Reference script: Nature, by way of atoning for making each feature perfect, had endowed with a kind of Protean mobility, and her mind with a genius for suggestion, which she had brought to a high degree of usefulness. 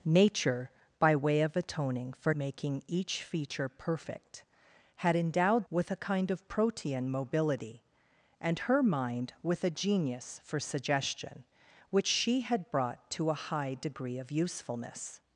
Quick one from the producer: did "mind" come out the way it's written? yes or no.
yes